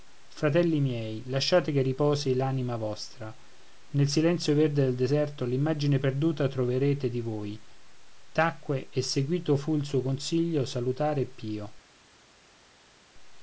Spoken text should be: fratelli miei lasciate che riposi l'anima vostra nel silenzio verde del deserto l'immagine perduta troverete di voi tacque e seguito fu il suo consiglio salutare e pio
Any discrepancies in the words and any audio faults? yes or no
no